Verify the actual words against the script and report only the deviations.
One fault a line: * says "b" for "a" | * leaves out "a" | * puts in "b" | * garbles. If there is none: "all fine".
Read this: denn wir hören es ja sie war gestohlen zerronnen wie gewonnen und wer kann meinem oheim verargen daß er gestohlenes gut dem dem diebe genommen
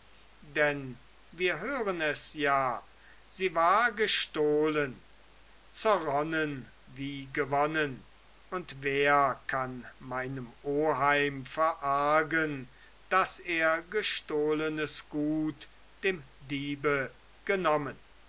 * leaves out "dem"